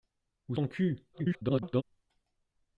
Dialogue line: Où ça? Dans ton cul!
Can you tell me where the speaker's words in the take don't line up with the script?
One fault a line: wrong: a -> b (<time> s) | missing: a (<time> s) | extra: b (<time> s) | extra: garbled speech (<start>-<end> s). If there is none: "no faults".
missing: ça Dans (0.6 s)
extra: garbled speech (1.1-1.8 s)